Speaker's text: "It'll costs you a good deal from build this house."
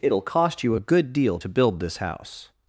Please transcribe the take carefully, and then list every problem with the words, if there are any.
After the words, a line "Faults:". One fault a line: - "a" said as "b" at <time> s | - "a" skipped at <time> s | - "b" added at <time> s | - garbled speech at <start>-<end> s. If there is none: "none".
"It'll cost you a good deal to build this house."
Faults:
- "costs" said as "cost" at 0.2 s
- "from" said as "to" at 1.4 s